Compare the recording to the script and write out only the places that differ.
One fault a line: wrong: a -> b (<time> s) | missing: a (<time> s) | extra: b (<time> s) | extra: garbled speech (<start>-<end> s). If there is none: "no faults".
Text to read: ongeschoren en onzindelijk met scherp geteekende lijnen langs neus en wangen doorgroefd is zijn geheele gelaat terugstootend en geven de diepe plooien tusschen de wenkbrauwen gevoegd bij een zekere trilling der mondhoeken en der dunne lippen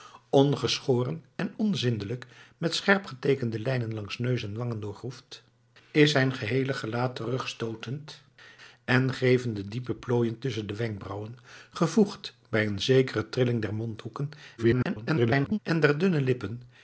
extra: garbled speech (14.6-15.6 s)